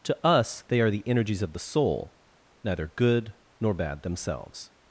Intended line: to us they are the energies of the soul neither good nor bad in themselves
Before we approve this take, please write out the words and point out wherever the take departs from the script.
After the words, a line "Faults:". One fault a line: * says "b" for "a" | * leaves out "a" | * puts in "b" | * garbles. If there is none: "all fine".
to us they are the energies of the soul neither good nor bad themselves
Faults:
* leaves out "in"